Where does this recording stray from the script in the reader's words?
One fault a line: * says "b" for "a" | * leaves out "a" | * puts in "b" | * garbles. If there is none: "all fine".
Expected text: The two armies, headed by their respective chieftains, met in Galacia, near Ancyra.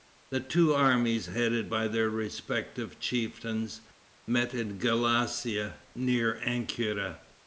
all fine